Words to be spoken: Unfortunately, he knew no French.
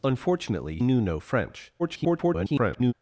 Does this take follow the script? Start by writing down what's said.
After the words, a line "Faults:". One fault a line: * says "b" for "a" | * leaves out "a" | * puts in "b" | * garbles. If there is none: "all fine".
Unfortunately, knew no French. [garbled]
Faults:
* leaves out "he"
* garbles